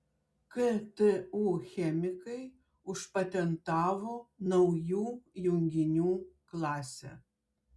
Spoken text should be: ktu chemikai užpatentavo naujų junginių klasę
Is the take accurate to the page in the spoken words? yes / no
yes